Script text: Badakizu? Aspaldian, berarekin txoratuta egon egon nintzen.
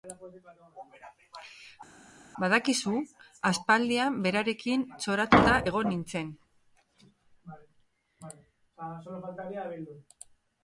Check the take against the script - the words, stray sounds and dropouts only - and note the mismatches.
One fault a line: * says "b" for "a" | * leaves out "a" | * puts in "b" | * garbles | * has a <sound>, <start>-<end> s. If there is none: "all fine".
* leaves out "egon"